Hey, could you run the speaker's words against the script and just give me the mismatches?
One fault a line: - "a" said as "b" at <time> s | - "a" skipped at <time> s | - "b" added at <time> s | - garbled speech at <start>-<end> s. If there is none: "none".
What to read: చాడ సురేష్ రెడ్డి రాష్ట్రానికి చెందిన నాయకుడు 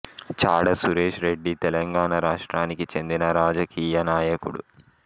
- "తెలంగాణ" added at 1.6 s
- "రాజకీయ" added at 3.3 s